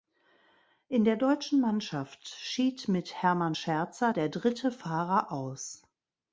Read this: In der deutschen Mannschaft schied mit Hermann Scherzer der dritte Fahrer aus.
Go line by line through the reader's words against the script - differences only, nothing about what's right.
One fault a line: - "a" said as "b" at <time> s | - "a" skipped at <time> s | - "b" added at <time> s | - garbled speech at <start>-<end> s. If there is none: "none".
none